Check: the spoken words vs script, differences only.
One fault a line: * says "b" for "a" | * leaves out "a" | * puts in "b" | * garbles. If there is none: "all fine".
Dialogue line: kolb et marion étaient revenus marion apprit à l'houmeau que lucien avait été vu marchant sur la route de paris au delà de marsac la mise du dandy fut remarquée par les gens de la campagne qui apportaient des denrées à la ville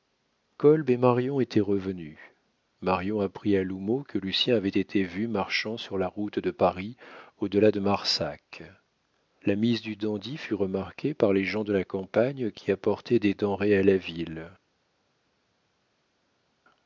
all fine